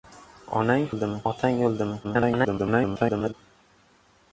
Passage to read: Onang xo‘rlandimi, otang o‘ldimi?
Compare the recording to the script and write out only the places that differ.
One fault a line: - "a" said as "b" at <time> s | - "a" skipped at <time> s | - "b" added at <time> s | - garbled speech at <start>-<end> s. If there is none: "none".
- "xo‘rlandimi" said as "o‘ldimi" at 0.9 s
- garbled speech at 2.0-3.3 s